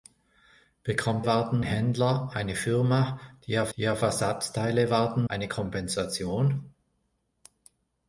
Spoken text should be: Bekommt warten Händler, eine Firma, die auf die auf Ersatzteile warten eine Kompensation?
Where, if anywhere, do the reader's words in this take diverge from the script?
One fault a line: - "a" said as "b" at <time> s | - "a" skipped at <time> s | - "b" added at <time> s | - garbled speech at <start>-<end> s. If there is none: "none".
none